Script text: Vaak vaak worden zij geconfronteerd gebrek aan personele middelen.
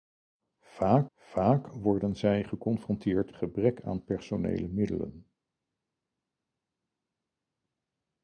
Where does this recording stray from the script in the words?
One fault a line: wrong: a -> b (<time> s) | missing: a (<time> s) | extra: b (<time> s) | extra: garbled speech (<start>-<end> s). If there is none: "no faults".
no faults